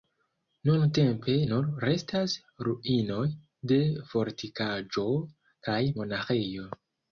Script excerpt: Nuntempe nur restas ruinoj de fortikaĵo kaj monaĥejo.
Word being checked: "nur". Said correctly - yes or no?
yes